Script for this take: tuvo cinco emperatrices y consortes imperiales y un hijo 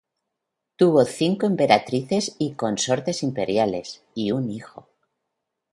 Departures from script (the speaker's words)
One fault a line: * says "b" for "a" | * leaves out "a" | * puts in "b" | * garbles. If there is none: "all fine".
all fine